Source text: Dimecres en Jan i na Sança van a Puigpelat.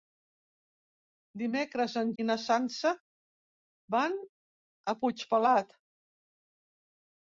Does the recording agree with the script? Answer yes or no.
no